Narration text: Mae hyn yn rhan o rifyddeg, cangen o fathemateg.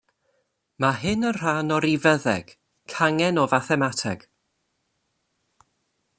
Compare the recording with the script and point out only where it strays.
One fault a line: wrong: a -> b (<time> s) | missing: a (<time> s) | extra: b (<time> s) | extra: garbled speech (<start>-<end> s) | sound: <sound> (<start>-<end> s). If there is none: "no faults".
no faults